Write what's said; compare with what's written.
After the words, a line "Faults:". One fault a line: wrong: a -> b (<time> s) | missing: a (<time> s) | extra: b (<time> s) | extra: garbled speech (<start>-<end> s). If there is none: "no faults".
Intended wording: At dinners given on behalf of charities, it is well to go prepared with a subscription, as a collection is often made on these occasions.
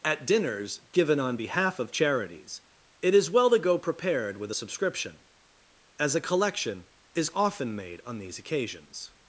At dinners given on behalf of charities, it is well to go prepared with a subscription, as a collection is often made on these occasions.
Faults:
no faults